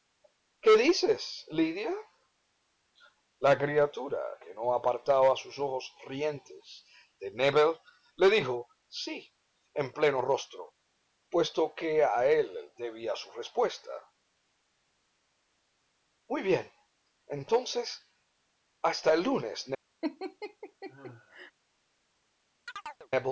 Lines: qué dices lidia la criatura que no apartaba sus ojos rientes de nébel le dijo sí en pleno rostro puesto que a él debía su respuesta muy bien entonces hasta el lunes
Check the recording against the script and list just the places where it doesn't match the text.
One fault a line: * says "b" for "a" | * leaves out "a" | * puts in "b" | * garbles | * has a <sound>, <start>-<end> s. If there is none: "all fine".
* has a laugh, 20.0-21.5 s
* has a chirp, 22.7-23.1 s